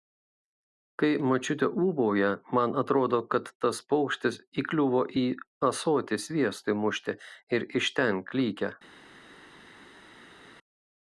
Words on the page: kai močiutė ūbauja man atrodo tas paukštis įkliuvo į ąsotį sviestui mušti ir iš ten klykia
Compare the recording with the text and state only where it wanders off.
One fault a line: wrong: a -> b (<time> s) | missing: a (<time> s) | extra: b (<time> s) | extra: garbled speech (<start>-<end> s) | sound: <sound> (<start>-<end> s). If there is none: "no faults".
extra: kad (3.4 s)